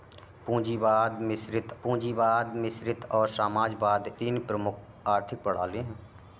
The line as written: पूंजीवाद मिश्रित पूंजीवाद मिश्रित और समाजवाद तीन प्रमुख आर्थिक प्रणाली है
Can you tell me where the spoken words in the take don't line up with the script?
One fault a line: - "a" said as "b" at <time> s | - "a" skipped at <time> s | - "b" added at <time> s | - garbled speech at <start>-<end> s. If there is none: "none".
none